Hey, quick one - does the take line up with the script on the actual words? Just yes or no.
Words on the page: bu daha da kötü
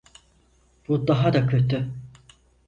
yes